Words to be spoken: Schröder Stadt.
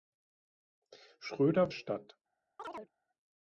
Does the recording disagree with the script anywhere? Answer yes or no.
no